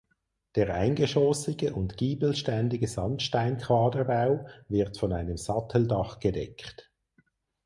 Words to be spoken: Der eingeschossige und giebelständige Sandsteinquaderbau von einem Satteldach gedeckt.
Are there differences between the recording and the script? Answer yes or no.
yes